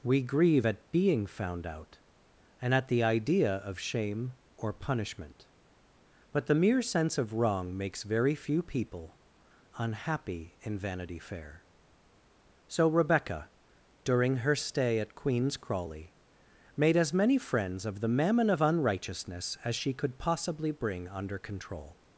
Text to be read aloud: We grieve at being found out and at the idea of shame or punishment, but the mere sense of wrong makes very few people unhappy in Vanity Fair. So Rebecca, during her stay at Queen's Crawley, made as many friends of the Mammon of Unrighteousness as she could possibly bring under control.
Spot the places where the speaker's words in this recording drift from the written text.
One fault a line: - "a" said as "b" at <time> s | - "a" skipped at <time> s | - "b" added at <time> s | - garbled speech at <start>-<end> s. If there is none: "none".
none